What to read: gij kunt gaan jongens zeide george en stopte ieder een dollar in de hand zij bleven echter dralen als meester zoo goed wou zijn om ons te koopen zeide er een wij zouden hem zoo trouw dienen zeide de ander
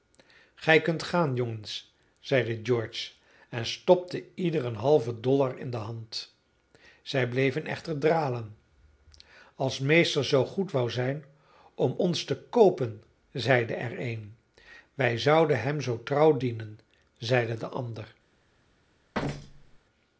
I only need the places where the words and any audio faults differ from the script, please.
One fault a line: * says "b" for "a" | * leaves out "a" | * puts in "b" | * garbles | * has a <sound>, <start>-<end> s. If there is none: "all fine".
* puts in "halven"
* has a thud, 19.1-19.8 s